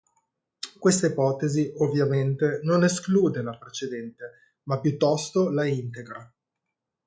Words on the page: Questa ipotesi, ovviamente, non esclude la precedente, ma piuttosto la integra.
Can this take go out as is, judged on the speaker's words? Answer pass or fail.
pass